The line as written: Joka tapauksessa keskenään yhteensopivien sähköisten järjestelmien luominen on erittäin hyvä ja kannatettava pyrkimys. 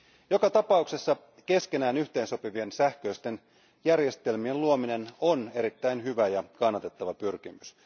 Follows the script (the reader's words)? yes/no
yes